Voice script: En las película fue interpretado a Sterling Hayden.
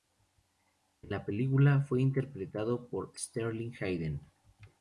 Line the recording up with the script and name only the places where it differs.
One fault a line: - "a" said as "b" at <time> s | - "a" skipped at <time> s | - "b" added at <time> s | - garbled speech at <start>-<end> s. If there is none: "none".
- "las" said as "la" at 1.1 s
- "a" said as "por" at 2.9 s